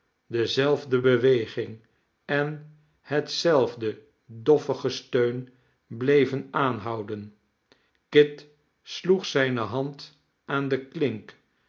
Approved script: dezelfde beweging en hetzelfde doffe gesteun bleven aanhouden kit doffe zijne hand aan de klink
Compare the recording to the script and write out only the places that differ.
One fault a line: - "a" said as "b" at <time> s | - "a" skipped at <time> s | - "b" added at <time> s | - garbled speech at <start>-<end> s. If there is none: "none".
- "doffe" said as "sloeg" at 8.8 s